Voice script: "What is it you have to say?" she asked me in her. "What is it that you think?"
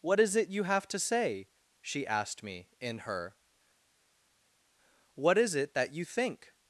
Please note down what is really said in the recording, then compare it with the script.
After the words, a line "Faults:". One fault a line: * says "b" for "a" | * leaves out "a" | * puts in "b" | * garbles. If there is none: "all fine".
"What is it you have to say?" she asked me in her. "What is it that you think?"
Faults:
all fine